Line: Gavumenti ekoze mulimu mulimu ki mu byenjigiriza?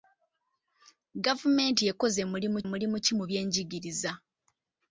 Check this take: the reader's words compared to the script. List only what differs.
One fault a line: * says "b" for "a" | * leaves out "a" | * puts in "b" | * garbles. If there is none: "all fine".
all fine